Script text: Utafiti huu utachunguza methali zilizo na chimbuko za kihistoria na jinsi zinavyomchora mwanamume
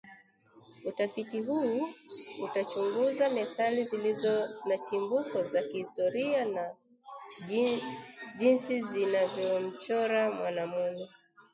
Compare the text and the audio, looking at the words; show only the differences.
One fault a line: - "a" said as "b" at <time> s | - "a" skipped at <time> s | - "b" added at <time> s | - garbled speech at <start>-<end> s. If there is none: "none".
none